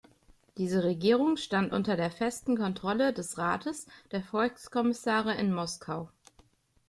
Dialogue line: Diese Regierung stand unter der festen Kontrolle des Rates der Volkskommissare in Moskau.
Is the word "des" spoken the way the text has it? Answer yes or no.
yes